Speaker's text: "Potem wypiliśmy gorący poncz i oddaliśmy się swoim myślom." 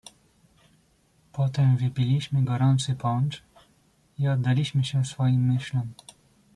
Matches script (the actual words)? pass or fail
pass